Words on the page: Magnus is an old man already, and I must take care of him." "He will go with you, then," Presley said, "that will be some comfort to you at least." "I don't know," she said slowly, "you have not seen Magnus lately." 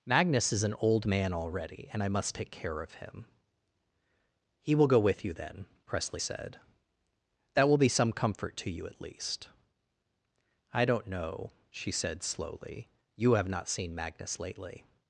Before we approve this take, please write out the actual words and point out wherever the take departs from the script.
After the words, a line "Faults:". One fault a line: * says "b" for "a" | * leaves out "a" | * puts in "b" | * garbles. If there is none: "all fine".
Magnus is an old man already, and I must take care of him." "He will go with you, then," Presley said, "that will be some comfort to you at least." "I don't know," she said slowly, "you have not seen Magnus lately."
Faults:
all fine